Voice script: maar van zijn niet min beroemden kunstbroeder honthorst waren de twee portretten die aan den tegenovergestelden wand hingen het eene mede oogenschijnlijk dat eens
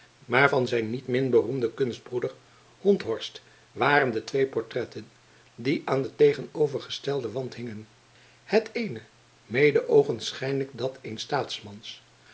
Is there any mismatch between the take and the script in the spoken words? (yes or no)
no